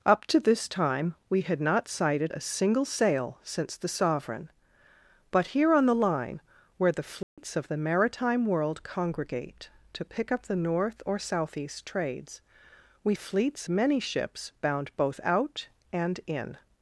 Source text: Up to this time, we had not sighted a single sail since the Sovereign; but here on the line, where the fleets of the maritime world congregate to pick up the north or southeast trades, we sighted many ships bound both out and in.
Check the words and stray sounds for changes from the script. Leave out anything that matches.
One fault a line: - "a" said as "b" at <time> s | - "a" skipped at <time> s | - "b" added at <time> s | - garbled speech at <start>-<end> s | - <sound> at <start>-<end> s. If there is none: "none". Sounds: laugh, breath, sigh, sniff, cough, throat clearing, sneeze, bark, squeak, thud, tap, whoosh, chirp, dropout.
- dropout at 7.2-7.4 s
- "sighted" said as "fleets" at 13.1 s